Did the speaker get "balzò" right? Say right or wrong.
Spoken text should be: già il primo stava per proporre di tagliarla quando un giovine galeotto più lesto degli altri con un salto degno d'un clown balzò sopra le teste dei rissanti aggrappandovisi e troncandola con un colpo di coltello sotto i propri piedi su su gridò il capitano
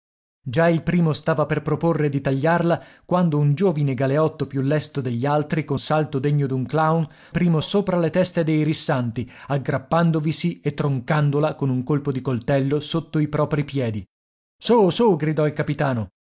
wrong